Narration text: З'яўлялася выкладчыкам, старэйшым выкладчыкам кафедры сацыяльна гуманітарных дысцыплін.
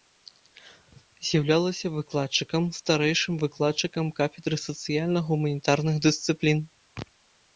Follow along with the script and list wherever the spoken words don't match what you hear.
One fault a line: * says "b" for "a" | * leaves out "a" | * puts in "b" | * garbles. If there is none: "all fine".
all fine